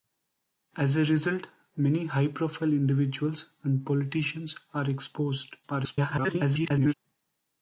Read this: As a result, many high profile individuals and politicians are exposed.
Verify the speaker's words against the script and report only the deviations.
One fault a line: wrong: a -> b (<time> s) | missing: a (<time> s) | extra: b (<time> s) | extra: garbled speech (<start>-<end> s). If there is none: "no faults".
extra: garbled speech (5.6-6.9 s)